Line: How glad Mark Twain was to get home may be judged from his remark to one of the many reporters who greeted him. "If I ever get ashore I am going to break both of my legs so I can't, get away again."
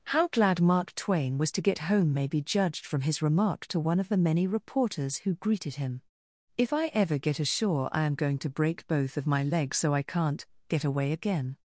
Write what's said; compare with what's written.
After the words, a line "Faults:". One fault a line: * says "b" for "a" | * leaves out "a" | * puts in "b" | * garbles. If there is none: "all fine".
How glad Mark Twain was to get home may be judged from his remark to one of the many reporters who greeted him. "If I ever get ashore I am going to break both of my legs so I can't, get away again."
Faults:
all fine